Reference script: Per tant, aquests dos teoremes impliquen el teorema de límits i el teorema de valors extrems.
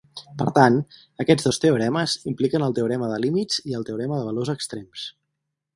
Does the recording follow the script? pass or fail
pass